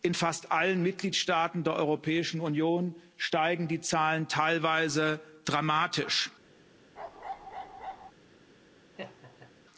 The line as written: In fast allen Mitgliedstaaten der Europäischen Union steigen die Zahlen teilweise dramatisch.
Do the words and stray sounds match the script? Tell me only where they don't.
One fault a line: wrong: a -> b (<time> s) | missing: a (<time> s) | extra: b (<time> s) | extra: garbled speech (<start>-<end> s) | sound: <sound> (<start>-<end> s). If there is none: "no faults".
sound: bark (7.0-8.1 s)
sound: laugh (9.0-9.5 s)